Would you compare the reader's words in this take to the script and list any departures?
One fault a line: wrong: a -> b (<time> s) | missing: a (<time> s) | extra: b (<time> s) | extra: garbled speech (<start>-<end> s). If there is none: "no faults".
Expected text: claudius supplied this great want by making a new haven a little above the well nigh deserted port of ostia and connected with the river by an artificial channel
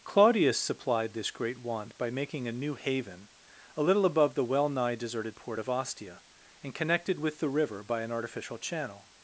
no faults